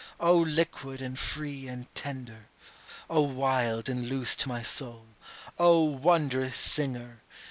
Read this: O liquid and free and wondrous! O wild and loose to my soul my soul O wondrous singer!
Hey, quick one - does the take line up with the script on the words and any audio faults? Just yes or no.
no